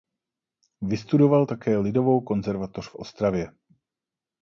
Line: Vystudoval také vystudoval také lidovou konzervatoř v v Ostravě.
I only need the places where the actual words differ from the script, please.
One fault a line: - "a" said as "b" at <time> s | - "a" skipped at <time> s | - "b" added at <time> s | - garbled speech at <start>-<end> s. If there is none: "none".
- "vystudoval také" skipped at 1.8 s
- "v" skipped at 3.0 s